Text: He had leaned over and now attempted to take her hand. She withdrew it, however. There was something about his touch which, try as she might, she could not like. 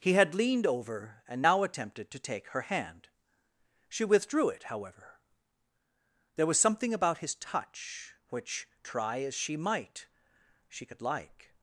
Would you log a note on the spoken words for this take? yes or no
yes